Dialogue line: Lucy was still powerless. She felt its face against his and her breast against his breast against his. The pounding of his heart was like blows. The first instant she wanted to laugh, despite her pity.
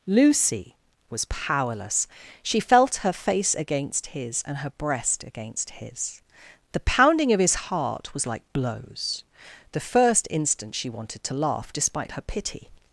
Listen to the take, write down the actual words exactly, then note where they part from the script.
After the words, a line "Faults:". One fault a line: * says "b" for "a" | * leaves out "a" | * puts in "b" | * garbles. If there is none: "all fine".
Lucy was powerless. She felt her face against his and her breast against his. The pounding of his heart was like blows. The first instant she wanted to laugh, despite her pity.
Faults:
* leaves out "still"
* says "her" for "its"
* leaves out "breast against his"